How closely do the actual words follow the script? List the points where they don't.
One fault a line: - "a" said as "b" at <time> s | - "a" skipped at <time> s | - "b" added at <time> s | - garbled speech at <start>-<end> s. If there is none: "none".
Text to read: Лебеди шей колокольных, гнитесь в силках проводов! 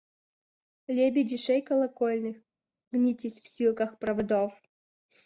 none